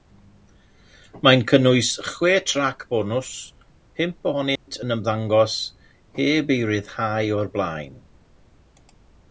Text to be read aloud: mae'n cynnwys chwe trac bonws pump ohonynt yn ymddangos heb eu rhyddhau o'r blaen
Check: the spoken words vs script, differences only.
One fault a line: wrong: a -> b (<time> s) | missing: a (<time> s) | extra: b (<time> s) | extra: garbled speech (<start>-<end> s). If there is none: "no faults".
no faults